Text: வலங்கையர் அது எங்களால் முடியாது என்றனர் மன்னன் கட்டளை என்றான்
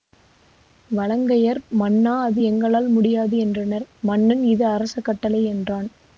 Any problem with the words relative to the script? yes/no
yes